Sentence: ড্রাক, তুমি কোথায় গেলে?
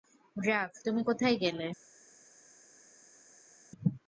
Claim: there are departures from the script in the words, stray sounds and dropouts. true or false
false